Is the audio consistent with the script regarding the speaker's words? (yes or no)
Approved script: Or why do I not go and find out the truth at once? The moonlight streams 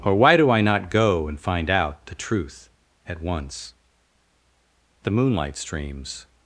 yes